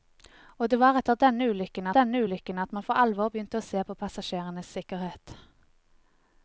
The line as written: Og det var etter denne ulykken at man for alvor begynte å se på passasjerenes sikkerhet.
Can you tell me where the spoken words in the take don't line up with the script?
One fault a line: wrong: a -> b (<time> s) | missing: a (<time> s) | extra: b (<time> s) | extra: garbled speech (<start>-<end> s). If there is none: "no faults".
extra: denne ulykken (2.0 s)